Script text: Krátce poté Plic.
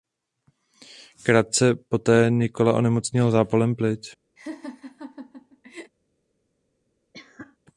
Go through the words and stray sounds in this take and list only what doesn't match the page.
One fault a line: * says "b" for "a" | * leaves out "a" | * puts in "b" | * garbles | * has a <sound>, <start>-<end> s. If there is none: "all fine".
* puts in "Nikola onemocněl zápalem"
* has a laugh, 4.4-5.9 s
* has a cough, 7.1-7.6 s